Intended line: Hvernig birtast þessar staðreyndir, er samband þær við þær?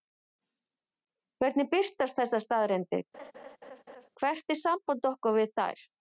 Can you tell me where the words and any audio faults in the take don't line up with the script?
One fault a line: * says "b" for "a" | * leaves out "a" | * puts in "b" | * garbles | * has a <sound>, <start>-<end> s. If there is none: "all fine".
* has a laugh, 3.1-4.1 s
* puts in "hvert"
* says "okkar" for "þær"